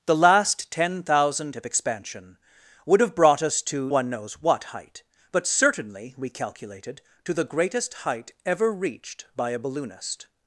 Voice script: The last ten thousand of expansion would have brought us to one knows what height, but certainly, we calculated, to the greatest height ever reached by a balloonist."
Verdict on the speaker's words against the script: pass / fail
pass